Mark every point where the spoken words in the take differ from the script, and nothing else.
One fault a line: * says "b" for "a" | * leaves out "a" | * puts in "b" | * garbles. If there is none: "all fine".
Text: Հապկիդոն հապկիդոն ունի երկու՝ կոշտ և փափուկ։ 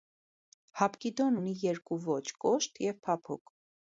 * leaves out "հապկիդոն"
* puts in "ոճ"